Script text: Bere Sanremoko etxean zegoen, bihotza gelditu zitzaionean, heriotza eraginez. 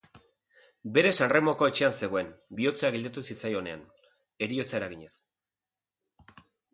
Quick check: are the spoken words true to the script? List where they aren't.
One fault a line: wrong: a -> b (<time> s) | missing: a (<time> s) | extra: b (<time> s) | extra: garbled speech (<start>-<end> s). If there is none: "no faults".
no faults